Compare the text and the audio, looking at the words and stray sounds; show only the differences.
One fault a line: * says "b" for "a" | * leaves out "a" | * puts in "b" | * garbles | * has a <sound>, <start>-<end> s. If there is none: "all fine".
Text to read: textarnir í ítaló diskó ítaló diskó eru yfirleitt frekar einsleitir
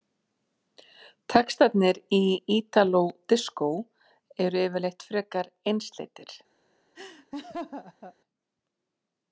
* leaves out "ítaló diskó"
* has a laugh, 7.0-8.2 s